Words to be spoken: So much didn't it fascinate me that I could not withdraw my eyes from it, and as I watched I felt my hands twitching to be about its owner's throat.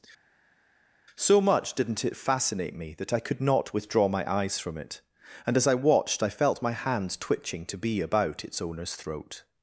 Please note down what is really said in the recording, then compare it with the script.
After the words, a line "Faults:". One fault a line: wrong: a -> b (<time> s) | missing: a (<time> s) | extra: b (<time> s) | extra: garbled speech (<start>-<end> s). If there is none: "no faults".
So much didn't it fascinate me that I could not withdraw my eyes from it, and as I watched I felt my hands twitching to be about its owner's throat.
Faults:
no faults